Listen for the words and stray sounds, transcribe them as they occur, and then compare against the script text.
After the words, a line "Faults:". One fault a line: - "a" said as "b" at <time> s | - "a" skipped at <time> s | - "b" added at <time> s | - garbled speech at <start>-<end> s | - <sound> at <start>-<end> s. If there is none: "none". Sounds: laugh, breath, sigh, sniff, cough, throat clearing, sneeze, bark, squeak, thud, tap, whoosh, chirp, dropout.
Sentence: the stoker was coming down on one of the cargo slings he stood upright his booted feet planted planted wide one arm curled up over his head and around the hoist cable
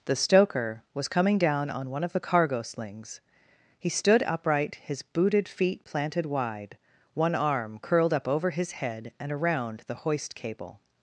the stoker was coming down on one of the cargo slings he stood upright his booted feet planted wide one arm curled up over his head and around the hoist cable
Faults:
- "planted" skipped at 6.2 s